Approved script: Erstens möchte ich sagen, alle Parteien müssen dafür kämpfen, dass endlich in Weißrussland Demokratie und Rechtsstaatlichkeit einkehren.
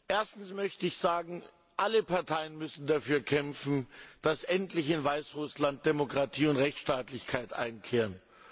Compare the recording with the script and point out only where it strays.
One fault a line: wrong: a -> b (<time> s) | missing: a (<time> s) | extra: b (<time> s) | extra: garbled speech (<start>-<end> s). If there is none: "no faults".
no faults